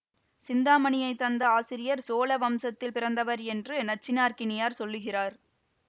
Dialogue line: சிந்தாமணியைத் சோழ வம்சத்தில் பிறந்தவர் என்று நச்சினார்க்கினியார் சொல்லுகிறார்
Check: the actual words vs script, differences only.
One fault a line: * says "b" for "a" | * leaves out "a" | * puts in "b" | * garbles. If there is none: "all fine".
* puts in "தந்த ஆசிரியர்"